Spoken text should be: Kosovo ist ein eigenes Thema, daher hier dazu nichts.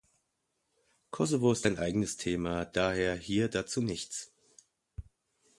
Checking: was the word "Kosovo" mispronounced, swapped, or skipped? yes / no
no